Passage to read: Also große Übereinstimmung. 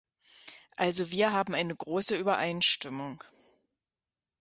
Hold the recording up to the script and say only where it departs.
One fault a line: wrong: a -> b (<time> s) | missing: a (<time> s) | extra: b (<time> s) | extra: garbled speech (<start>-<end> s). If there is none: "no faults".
extra: wir haben eine (1.1 s)